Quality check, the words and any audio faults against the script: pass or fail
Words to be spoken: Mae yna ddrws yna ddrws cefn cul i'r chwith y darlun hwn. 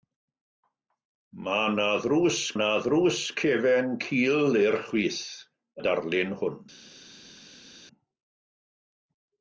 pass